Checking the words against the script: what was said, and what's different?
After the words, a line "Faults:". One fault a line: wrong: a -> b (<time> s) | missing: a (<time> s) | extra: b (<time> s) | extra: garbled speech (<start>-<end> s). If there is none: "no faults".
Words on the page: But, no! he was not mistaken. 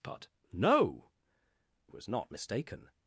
But, no! was not mistaken.
Faults:
missing: he (1.1 s)